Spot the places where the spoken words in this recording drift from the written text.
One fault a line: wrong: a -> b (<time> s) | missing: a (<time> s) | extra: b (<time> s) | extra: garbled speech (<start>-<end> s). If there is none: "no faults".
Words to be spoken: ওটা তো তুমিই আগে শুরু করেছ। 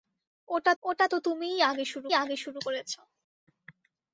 extra: ওটা (0.8 s)
extra: আগে শুরু (2.1 s)